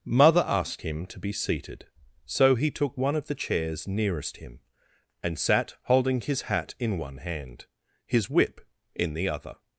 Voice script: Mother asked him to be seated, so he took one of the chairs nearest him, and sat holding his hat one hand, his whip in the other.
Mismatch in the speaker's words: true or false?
true